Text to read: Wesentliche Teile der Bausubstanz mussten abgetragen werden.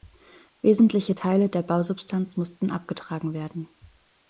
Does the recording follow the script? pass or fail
pass